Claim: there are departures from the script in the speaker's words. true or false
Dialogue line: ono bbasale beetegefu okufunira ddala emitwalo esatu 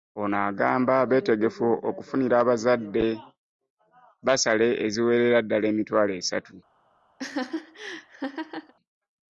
true